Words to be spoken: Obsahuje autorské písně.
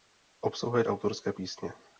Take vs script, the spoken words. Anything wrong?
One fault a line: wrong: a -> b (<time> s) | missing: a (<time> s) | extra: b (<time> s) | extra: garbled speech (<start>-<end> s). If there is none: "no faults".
no faults